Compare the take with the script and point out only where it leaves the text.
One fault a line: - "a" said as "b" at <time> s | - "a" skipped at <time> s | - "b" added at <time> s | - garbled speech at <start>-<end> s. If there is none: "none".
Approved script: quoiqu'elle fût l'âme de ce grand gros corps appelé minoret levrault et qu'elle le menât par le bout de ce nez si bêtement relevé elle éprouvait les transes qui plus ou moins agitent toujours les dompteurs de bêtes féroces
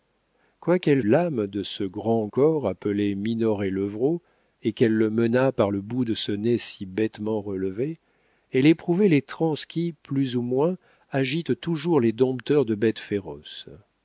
- "fût" skipped at 1.0 s
- "gros" skipped at 2.3 s